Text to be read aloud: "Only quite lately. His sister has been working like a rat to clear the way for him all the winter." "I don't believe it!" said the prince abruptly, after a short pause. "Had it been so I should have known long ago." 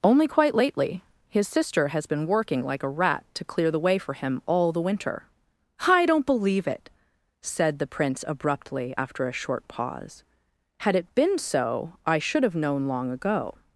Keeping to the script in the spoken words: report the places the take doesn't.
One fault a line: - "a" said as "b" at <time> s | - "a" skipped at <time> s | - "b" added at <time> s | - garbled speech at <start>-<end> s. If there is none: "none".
none